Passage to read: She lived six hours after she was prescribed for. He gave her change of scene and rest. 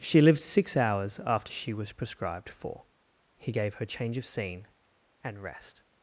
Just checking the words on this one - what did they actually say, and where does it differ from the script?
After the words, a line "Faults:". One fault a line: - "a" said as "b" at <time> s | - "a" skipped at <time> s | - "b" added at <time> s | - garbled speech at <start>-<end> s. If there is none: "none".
She lived six hours after she was prescribed for. He gave her change of scene and rest.
Faults:
none